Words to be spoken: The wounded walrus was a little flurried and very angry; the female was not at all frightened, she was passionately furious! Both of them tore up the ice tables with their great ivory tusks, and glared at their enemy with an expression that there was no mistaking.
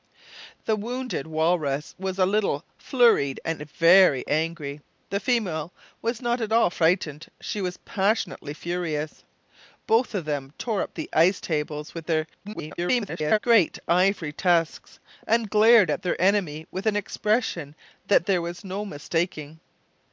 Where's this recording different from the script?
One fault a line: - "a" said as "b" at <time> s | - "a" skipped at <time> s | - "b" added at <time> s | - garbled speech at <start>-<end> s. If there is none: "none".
- garbled speech at 12.4-13.4 s